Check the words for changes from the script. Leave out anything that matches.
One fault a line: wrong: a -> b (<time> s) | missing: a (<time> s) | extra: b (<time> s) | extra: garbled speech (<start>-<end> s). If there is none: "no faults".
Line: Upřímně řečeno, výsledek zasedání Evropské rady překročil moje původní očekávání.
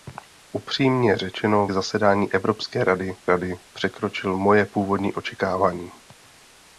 missing: výsledek (1.7 s)
extra: rady (3.2 s)